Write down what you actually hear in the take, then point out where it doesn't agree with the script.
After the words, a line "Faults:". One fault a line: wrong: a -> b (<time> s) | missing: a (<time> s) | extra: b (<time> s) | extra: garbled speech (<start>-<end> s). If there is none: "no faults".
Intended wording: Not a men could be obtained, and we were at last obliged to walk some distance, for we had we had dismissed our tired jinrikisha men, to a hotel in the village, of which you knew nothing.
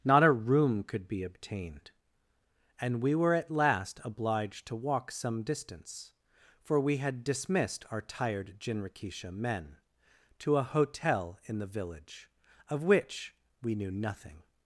Not a room could be obtained, and we were at last obliged to walk some distance, for we had dismissed our tired jinrikisha men, to a hotel in the village, of which we knew nothing.
Faults:
wrong: men -> room (0.3 s)
missing: we had (7.2 s)
wrong: you -> we (13.6 s)